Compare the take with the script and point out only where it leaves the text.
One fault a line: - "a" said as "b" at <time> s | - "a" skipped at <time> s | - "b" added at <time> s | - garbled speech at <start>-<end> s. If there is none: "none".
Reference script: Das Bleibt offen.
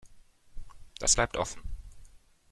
none